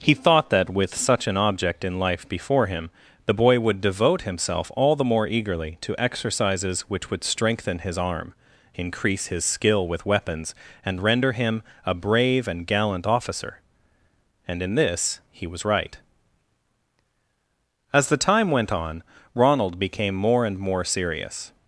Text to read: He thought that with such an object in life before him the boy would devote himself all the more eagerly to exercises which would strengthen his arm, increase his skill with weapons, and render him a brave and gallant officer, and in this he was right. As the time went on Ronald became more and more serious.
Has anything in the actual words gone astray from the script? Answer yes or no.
no